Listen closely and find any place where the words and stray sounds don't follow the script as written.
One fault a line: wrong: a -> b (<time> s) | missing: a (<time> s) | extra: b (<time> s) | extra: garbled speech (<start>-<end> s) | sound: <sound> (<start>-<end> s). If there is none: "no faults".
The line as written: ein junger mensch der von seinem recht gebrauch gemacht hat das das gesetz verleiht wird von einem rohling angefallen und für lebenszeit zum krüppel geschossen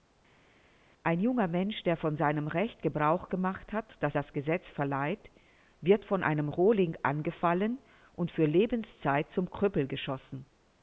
no faults